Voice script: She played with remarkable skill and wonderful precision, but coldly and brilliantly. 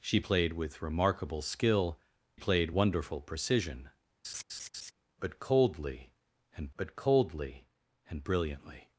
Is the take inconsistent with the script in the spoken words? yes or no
yes